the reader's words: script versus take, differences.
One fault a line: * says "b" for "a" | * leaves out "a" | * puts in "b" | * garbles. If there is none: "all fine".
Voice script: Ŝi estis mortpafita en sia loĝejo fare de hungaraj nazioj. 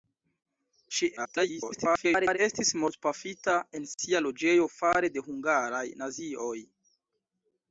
* garbles